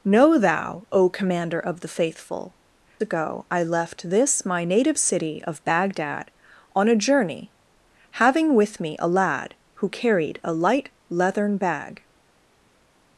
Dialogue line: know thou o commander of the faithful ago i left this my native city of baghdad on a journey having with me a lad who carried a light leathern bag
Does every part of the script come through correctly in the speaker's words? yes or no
yes